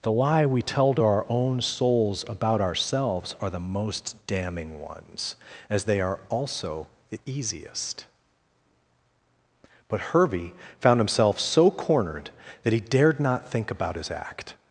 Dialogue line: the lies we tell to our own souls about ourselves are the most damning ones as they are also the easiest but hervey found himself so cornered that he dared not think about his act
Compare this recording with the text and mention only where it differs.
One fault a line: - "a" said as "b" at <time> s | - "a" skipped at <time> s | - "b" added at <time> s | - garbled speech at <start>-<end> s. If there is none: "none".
- "lies" said as "lie" at 0.1 s